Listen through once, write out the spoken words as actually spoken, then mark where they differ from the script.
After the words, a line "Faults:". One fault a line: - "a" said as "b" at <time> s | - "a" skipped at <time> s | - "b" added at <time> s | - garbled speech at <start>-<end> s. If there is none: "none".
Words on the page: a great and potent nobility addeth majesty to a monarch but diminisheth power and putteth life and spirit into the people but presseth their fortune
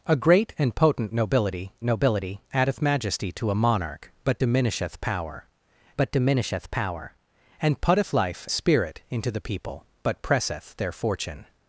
a great and potent nobility nobility addeth majesty to a monarch but diminisheth power but diminisheth power and putteth life spirit into the people but presseth their fortune
Faults:
- "nobility" added at 1.8 s
- "but diminisheth power" added at 6.0 s
- "and" skipped at 8.5 s